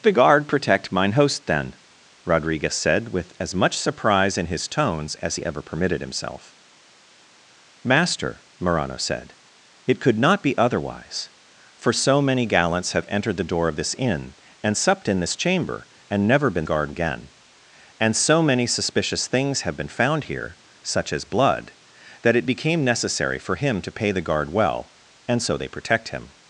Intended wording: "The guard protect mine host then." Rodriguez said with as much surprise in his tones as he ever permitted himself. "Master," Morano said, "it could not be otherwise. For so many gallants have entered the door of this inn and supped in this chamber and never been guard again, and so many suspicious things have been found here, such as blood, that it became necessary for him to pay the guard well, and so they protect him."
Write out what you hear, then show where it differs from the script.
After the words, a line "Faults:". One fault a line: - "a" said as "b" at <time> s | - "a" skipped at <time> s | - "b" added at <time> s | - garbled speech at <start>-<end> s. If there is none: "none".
"The guard protect mine host then." Rodriguez said with as much surprise in his tones as he ever permitted himself. "Master," Morano said, "it could not be otherwise. For so many gallants have entered the door of this inn and supped in this chamber and never been guard again, and so many suspicious things have been found here, such as blood, that it became necessary for him to pay the guard well, and so they protect him."
Faults:
none